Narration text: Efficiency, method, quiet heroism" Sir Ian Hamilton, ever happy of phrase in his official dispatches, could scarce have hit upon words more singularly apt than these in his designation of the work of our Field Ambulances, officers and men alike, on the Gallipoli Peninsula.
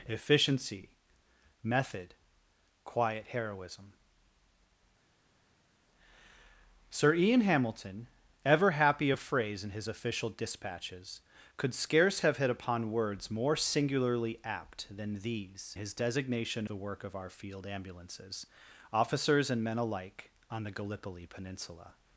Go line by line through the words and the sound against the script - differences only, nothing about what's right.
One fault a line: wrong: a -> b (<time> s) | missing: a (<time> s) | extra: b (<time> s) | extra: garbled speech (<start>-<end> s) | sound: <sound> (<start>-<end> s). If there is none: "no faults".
missing: in (15.8 s)
missing: of (16.7 s)